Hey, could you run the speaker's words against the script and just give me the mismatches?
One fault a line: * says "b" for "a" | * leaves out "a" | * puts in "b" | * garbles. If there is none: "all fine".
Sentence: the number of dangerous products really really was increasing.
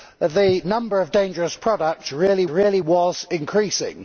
all fine